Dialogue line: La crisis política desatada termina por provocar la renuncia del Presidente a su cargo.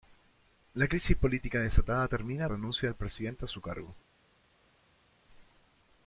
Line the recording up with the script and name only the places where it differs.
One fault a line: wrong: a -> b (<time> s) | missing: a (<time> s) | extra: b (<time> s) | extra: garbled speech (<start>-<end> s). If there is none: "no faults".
missing: por provocar la (2.5 s)